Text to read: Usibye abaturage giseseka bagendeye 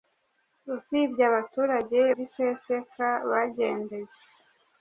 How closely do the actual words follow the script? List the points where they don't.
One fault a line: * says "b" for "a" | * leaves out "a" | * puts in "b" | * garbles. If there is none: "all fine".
all fine